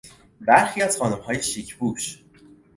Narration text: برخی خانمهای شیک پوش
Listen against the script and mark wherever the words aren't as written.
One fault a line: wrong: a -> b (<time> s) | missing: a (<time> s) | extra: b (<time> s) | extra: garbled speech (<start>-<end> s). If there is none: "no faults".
extra: از (0.8 s)